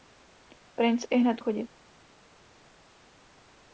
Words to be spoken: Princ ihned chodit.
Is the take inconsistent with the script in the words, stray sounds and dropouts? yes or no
no